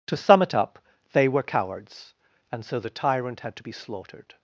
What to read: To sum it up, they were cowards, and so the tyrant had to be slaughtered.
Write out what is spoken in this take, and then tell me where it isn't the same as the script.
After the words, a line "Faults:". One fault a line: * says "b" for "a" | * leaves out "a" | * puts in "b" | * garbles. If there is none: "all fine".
To sum it up, they were cowards, and so the tyrant had to be slaughtered.
Faults:
all fine